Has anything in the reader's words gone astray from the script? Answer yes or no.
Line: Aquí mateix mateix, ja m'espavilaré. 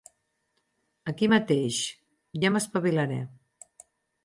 yes